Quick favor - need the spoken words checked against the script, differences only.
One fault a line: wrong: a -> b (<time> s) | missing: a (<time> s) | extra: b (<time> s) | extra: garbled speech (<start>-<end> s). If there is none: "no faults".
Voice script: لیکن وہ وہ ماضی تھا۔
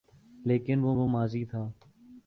no faults